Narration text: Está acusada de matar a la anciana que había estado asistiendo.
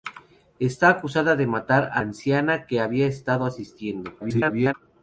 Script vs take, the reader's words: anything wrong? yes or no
yes